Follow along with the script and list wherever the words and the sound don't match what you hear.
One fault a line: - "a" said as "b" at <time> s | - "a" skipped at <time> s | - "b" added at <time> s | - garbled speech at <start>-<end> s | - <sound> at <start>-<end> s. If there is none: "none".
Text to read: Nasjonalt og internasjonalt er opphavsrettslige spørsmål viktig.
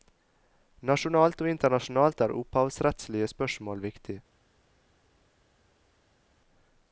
none